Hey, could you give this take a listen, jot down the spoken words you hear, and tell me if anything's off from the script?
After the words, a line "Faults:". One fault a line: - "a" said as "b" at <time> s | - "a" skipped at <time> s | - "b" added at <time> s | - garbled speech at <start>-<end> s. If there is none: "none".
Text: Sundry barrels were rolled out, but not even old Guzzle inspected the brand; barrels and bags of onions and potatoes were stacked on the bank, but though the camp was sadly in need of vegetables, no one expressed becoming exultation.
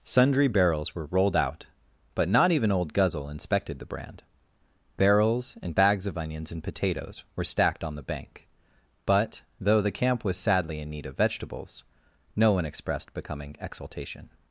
Sundry barrels were rolled out, but not even old Guzzle inspected the brand; barrels and bags of onions and potatoes were stacked on the bank, but though the camp was sadly in need of vegetables, no one expressed becoming exultation.
Faults:
none